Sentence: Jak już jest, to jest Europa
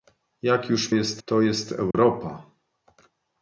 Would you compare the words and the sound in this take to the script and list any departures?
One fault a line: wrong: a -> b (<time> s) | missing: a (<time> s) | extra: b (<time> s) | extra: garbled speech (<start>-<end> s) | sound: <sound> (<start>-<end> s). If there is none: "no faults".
sound: dropout (1.9-1.9 s)